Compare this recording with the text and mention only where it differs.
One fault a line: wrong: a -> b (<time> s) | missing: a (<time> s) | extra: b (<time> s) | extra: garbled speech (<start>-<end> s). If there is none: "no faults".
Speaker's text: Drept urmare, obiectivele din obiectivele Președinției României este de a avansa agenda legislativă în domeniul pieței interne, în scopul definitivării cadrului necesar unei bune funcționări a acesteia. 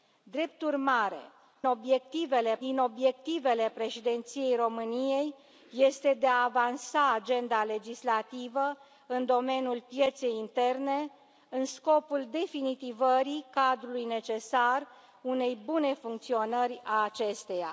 no faults